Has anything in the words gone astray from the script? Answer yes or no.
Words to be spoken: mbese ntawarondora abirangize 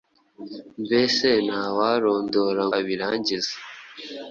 no